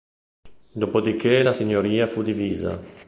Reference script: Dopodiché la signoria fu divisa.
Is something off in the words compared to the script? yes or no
no